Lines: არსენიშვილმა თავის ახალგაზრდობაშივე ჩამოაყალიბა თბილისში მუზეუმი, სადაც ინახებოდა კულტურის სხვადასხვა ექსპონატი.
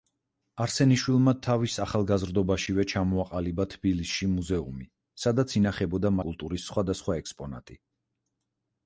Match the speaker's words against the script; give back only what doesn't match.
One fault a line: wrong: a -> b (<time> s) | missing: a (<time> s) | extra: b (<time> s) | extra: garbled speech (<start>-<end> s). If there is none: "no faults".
no faults